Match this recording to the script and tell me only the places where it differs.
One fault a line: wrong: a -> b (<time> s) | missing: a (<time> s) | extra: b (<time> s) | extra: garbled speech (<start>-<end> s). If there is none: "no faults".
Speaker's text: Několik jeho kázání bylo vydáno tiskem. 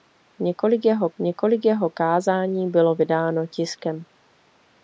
extra: několik jeho (1.2 s)